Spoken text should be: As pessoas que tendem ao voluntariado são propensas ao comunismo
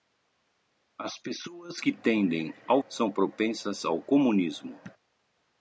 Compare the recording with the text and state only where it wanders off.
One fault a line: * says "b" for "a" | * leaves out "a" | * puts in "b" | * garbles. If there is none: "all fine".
* leaves out "voluntariado"